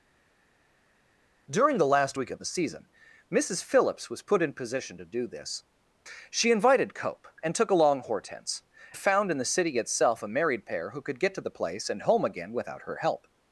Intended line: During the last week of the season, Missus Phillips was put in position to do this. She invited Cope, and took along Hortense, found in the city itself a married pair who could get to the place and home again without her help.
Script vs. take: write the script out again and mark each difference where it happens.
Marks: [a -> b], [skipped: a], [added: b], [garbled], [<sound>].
During the last week of the season, Missus Phillips was put in position to do this. She invited Cope, and took along Hortense, found in the city itself a married pair who could get to the place and home again without her help.